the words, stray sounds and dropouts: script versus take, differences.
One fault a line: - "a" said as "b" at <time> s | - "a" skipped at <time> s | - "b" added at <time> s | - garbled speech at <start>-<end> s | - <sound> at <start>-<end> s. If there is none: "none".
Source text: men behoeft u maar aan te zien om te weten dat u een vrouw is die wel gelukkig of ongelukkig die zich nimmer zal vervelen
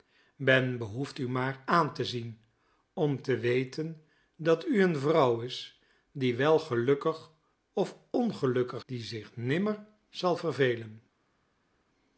none